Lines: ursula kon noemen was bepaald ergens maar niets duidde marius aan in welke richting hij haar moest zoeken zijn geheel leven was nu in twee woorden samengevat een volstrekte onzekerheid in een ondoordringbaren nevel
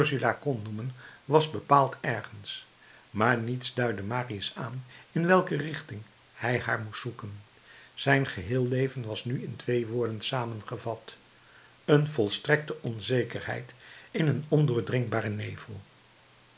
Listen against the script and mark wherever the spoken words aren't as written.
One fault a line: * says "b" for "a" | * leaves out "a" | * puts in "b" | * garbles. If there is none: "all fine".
all fine